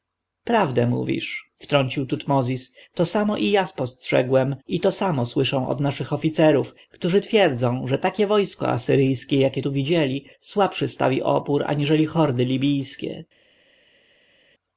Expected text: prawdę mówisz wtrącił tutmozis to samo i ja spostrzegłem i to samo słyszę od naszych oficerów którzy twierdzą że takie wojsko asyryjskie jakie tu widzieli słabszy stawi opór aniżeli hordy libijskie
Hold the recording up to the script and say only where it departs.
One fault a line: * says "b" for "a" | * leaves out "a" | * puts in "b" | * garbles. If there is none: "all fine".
all fine